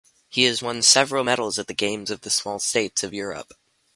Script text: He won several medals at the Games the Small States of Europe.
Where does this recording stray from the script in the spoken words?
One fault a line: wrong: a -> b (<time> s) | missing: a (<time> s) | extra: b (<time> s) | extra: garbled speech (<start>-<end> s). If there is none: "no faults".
extra: has (0.5 s)
extra: of (2.1 s)